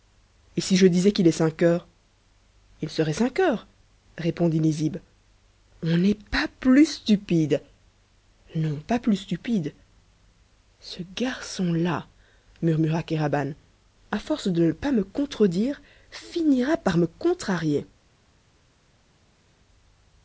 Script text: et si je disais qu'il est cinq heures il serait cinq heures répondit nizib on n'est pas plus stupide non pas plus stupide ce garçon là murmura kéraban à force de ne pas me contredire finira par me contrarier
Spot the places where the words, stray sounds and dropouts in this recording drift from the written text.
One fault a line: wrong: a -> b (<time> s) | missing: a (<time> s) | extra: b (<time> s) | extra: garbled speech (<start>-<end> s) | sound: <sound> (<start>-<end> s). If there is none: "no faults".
no faults